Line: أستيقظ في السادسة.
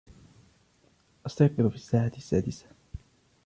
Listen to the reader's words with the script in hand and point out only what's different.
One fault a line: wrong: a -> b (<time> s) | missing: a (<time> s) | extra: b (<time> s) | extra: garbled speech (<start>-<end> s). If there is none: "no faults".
extra: الساعة (1.8 s)